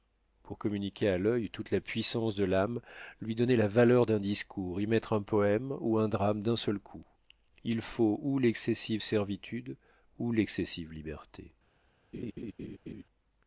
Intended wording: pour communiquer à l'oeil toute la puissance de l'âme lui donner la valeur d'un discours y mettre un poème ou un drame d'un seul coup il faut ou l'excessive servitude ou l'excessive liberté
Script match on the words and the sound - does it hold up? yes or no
no